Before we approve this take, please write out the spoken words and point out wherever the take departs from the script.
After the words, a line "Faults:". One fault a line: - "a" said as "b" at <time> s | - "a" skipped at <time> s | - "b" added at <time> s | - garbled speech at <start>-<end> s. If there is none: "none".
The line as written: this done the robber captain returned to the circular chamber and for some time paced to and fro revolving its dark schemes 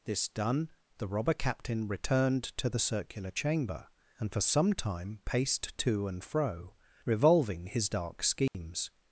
this done the robber captain returned to the circular chamber and for some time paced to and fro revolving his dark schemes
Faults:
- "its" said as "his" at 7.7 s